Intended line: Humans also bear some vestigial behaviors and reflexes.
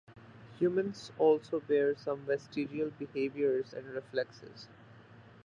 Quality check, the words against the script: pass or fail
pass